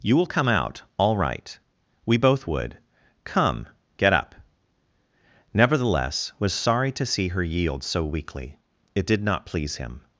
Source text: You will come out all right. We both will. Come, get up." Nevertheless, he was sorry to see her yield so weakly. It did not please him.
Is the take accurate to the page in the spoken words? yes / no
no